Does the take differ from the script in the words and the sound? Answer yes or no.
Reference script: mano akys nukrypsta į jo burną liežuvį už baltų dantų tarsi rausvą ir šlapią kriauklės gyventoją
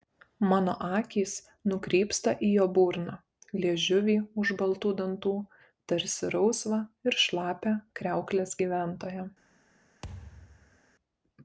yes